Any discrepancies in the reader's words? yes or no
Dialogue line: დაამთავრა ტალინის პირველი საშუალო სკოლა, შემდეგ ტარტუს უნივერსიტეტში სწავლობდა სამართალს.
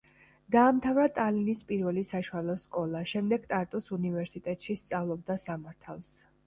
no